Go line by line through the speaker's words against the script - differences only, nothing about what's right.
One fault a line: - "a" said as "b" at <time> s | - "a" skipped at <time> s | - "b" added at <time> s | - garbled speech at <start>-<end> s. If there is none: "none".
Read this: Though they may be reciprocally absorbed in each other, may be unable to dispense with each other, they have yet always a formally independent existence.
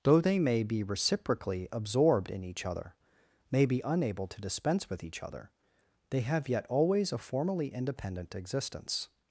none